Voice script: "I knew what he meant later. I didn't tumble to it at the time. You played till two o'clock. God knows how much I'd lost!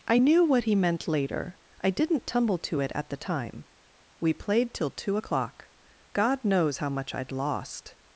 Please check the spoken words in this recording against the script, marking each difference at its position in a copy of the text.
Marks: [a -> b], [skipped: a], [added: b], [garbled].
"I knew what he meant later. I didn't tumble to it at the time. [You -> We] played till two o'clock. God knows how much I'd lost!